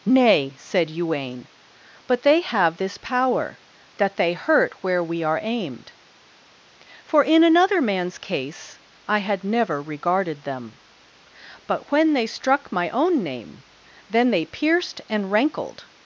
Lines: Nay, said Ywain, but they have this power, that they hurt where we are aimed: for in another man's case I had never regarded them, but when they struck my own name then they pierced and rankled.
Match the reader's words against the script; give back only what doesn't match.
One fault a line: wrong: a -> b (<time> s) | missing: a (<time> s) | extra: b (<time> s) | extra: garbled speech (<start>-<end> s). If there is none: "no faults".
no faults